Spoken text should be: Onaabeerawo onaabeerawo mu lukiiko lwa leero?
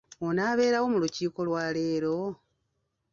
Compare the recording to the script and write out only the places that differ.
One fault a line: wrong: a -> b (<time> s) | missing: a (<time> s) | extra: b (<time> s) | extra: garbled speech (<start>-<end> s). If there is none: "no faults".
missing: onaabeerawo (0.8 s)